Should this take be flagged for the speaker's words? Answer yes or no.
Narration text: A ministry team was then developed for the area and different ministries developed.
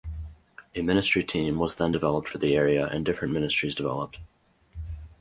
no